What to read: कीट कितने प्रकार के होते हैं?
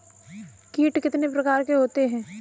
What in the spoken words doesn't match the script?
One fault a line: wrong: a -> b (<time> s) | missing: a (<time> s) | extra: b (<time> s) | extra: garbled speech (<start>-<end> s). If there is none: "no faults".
no faults